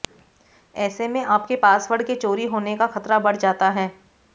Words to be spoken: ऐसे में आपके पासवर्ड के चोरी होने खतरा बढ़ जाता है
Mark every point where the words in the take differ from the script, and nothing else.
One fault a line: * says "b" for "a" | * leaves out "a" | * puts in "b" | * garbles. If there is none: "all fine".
* puts in "का"